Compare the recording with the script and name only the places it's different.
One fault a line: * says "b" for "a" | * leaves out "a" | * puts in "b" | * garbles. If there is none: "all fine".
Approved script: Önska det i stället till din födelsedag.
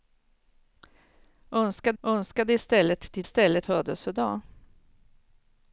* puts in "önska"
* says "stället" for "din"